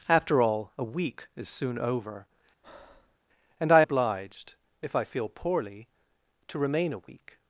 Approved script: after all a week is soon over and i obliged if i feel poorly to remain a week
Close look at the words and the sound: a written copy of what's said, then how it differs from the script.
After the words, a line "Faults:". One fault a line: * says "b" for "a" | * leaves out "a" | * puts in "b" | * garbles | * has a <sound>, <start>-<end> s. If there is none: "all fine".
after all a week is soon over and i obliged if i feel poorly to remain a week
Faults:
* has a breath, 2.6-3.2 s